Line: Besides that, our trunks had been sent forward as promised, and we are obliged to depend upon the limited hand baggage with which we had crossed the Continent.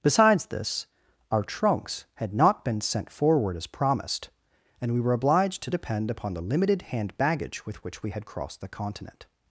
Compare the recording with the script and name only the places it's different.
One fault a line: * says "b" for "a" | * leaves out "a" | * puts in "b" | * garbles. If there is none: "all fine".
* says "this" for "that"
* puts in "not"
* says "were" for "are"